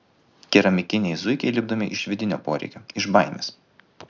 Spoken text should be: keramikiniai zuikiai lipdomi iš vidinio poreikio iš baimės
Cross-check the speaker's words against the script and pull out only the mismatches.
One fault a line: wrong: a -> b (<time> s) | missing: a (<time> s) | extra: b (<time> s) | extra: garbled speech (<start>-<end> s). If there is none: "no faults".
no faults